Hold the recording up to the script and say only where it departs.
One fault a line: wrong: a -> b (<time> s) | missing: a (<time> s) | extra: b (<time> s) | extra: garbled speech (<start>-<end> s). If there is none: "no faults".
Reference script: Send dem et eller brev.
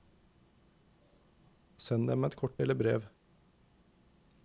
extra: kort (2.4 s)